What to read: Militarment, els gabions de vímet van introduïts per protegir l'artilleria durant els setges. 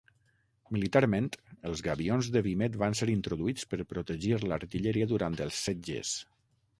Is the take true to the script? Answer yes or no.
no